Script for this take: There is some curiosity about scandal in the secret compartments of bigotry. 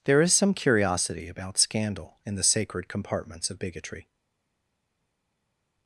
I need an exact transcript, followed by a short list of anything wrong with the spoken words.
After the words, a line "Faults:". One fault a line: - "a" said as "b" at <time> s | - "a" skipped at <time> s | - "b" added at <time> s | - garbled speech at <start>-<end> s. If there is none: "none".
There is some curiosity about scandal in the sacred compartments of bigotry.
Faults:
- "secret" said as "sacred" at 2.4 s